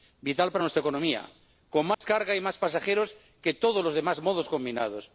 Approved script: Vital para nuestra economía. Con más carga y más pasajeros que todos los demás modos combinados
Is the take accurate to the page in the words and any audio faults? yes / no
no